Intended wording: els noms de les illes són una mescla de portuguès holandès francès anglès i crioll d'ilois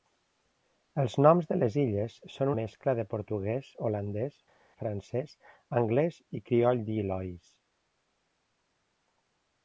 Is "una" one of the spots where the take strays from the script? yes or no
yes